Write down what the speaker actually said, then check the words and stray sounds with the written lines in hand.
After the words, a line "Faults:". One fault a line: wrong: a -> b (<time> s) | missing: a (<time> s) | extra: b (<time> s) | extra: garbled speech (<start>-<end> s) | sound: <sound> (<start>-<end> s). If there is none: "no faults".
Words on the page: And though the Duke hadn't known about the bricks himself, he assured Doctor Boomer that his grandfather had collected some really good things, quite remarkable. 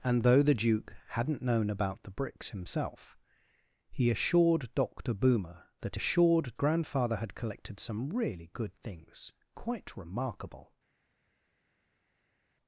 And though the Duke hadn't known about the bricks himself, he assured Doctor Boomer that assured grandfather had collected some really good things, quite remarkable.
Faults:
wrong: his -> assured (5.9 s)